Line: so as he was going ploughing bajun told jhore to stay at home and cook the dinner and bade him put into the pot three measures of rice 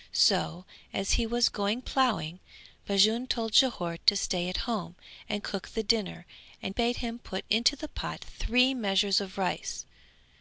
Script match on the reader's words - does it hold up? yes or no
yes